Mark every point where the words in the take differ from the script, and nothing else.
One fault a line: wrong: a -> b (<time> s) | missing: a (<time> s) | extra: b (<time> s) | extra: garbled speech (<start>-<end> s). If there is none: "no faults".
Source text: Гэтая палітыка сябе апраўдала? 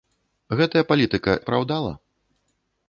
missing: сябе (1.3 s)